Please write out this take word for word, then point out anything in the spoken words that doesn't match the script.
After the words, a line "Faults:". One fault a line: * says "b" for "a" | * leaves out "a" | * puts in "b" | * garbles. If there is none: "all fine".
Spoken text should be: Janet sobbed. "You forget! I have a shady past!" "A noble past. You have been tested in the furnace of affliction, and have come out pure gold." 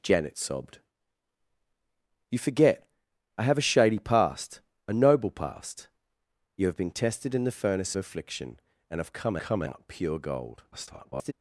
Janet sobbed. "You forget! I have a shady past!" "A noble past. You have been tested in the furnace affliction, and have come come out pure gold." [garbled]
Faults:
* leaves out "of"
* puts in "come"
* garbles